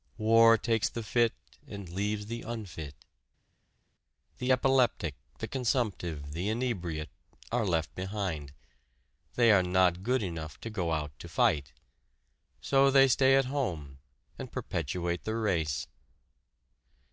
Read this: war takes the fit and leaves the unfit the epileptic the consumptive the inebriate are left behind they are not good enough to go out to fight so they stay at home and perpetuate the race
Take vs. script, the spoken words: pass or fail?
pass